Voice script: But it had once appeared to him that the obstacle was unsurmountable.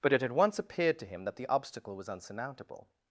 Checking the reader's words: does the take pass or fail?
pass